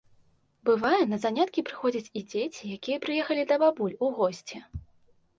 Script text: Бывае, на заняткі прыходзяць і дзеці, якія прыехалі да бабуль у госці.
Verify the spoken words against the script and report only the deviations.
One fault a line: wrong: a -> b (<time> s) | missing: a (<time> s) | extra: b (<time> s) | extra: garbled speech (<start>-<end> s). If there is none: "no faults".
no faults